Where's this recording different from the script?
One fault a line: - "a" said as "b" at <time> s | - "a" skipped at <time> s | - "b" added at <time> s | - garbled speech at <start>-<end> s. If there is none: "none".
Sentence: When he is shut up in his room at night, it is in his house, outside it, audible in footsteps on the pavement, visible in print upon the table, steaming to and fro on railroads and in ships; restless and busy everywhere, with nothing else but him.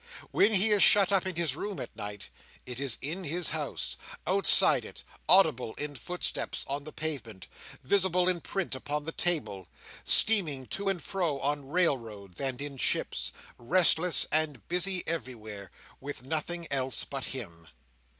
none